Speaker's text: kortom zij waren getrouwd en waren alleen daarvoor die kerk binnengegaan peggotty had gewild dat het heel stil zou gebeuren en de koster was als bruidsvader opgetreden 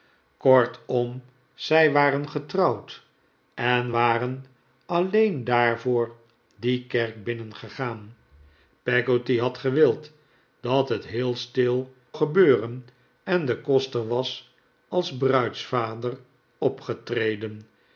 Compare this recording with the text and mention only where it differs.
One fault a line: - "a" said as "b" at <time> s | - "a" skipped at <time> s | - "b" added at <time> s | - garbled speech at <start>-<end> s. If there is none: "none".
- "zou" skipped at 11.9 s